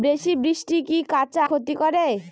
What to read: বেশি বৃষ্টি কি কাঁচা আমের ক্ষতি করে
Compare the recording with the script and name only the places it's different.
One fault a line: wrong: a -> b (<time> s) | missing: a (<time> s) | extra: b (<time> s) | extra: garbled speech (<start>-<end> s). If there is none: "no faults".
missing: আমের (1.4 s)